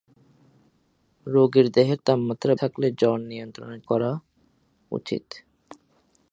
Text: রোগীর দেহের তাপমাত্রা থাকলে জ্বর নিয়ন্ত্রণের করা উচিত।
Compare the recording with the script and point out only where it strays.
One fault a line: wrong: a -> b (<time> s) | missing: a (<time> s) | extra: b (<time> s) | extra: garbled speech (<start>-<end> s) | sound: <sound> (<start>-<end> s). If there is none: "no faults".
no faults